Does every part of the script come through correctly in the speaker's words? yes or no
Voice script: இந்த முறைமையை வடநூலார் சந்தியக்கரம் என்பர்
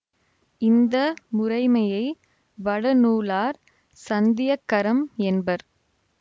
yes